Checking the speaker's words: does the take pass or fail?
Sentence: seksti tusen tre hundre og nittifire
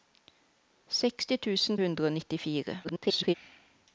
fail